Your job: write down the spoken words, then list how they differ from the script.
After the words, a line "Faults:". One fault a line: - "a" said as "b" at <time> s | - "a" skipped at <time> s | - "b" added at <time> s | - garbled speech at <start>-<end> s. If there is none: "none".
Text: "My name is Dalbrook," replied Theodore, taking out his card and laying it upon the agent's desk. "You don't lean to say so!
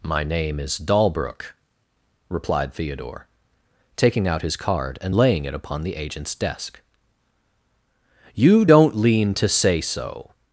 "My name is Dalbrook," replied Theodore, taking out his card and laying it upon the agent's desk. "You don't lean to say so!
Faults:
none